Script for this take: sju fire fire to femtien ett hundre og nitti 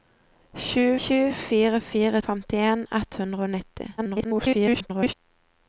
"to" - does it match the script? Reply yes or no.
no